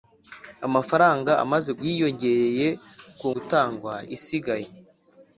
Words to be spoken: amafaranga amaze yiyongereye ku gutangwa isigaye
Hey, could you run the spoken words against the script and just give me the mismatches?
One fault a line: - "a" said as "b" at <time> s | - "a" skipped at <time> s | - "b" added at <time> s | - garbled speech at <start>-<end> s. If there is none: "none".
none